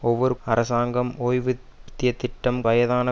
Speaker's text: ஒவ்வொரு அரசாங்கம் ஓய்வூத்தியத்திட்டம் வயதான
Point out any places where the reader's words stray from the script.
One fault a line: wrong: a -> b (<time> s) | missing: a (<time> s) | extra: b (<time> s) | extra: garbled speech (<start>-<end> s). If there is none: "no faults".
no faults